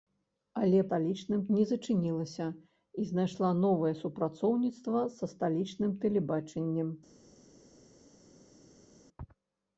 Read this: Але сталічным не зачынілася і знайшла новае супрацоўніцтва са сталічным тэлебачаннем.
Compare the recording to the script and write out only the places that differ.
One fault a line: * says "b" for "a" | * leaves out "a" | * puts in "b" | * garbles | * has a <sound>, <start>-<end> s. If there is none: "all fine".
all fine